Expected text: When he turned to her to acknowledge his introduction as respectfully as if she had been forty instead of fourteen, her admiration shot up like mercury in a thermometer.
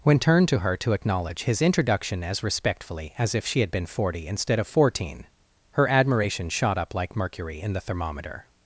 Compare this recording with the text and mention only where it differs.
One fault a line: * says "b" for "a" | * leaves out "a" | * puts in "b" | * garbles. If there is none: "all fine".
* leaves out "he"
* says "the" for "a"